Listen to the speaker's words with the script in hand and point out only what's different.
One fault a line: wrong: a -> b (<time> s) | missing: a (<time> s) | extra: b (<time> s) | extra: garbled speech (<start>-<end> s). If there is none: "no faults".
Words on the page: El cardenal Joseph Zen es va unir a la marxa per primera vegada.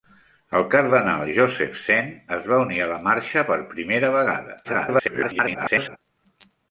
extra: garbled speech (4.6-6.0 s)